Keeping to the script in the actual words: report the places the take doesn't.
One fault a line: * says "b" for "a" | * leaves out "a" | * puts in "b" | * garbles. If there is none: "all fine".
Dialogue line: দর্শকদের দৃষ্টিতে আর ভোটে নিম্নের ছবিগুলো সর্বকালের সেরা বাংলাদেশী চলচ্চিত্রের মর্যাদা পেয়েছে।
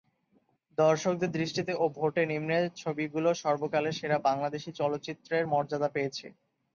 * says "ও" for "আর"